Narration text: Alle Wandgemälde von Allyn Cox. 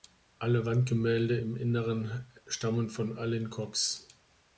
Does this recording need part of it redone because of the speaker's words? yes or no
yes